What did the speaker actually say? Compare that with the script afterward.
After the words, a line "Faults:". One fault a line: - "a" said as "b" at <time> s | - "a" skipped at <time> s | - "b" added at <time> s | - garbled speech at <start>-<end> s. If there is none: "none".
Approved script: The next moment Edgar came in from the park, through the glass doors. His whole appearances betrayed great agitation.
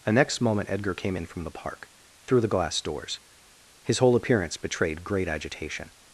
The next moment Edgar came in from the park, through the glass doors. His whole appearance betrayed great agitation.
Faults:
- "appearances" said as "appearance" at 4.2 s